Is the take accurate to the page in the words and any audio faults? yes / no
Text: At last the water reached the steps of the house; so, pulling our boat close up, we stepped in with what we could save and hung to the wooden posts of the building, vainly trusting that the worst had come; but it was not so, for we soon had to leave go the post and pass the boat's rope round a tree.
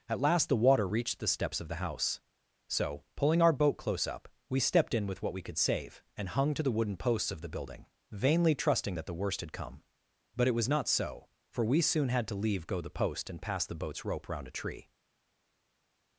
yes